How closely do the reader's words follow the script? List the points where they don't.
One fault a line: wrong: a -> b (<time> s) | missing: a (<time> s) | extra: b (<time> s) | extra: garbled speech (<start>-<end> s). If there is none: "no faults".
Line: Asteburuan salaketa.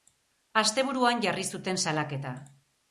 extra: jarri zuten (1.3 s)